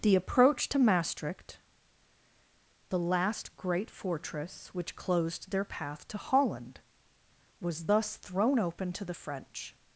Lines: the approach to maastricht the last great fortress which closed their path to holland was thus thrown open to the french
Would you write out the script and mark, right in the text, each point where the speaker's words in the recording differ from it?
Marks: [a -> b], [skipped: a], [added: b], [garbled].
the approach to maastricht the last great fortress which closed their path to holland was thus thrown open to the french